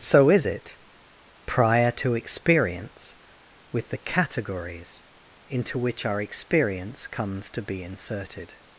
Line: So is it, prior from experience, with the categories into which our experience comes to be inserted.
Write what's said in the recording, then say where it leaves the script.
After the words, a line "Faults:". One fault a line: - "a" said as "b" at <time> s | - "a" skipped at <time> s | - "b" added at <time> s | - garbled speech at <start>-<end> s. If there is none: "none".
So is it, prior to experience, with the categories into which our experience comes to be inserted.
Faults:
- "from" said as "to" at 1.9 s